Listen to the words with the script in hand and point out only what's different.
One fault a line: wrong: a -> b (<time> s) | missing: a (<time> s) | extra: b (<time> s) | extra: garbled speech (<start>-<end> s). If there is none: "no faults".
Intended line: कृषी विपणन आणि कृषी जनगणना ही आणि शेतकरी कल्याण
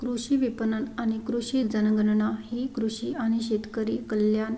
extra: कृषी (2.8 s)